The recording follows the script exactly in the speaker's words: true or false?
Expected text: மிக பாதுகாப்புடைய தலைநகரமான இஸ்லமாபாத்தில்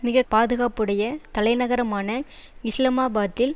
true